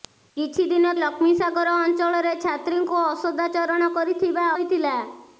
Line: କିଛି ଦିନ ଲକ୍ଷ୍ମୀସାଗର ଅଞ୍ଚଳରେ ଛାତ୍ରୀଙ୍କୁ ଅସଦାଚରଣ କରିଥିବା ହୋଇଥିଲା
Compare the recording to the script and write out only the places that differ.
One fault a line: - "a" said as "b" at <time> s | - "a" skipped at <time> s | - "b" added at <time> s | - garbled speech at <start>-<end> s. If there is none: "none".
none